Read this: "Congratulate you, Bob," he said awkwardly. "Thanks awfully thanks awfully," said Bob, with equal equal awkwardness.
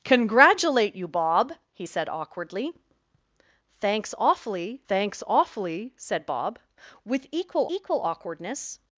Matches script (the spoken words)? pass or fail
pass